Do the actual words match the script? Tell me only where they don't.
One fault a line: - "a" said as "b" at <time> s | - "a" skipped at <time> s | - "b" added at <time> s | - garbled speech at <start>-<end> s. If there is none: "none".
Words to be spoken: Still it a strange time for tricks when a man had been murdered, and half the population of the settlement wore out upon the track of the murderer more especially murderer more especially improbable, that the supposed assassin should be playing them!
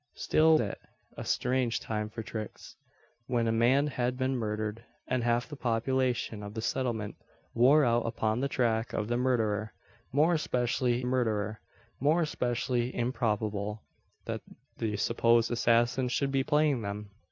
none